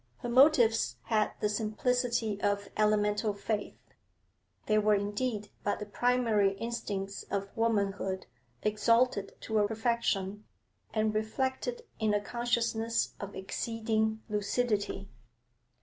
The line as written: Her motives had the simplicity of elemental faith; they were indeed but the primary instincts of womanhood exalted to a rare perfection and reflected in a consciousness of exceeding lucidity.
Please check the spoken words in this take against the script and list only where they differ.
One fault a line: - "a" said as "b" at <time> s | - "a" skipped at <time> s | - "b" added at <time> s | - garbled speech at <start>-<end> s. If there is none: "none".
- "rare" skipped at 9.7 s